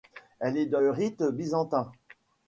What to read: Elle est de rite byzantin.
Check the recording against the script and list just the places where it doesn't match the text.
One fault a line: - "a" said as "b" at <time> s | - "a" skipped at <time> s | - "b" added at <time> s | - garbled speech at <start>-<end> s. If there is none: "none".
none